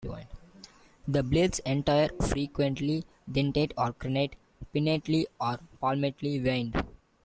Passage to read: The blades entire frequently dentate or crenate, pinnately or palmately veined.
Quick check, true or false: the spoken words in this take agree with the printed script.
true